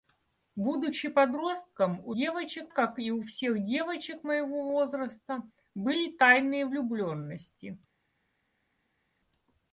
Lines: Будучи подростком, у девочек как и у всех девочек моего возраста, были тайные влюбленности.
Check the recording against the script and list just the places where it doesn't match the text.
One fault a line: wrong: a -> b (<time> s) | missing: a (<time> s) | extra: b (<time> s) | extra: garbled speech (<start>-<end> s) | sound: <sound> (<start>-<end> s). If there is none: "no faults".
no faults